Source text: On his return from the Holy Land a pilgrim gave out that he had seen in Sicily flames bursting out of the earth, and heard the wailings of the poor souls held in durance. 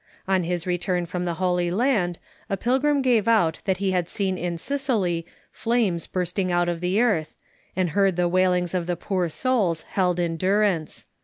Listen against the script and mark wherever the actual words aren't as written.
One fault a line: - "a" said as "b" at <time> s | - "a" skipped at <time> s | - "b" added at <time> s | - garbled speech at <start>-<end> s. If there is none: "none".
none